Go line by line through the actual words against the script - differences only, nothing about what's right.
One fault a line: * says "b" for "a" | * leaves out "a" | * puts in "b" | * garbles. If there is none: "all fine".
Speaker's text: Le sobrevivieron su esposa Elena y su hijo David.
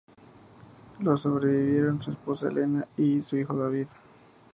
all fine